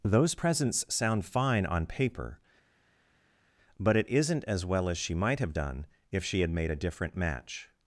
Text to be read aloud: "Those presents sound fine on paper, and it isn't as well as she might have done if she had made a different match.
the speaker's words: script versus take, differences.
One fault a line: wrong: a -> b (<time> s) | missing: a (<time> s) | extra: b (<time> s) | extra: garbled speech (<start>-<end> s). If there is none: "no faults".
wrong: and -> but (3.8 s)